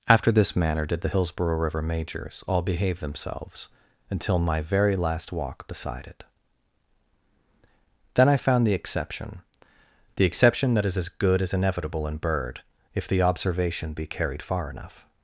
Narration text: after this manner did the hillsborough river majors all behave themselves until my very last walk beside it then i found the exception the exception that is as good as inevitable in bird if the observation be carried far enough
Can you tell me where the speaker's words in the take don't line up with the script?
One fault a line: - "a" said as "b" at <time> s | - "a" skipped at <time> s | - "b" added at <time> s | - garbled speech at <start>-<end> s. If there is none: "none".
none